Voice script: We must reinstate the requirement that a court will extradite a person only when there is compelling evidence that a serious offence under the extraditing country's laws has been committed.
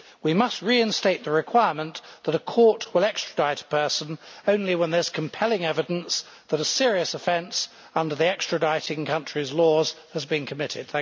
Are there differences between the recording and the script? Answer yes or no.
no